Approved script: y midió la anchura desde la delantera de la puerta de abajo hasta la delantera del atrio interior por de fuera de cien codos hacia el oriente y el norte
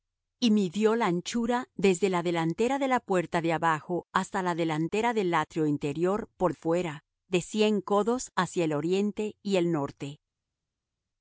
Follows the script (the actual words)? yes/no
no